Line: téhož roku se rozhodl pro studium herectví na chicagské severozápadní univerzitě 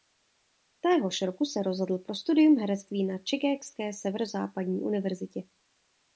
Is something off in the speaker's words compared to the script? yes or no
no